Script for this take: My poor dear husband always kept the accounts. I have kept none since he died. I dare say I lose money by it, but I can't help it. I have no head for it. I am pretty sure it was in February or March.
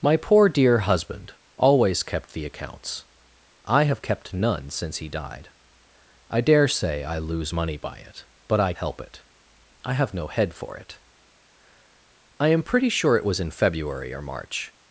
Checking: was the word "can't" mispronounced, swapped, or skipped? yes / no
yes